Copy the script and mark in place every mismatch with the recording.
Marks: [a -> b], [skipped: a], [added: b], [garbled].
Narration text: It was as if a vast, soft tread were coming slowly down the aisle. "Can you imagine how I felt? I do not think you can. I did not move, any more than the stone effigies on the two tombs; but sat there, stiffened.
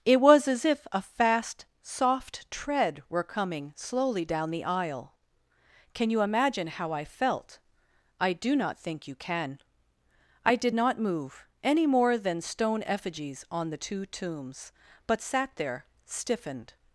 It was as if a [vast, -> fast] soft tread were coming slowly down the aisle. "Can you imagine how I felt? I do not think you can. I did not move, any more than [skipped: the] stone effigies on the two tombs; but sat there, stiffened.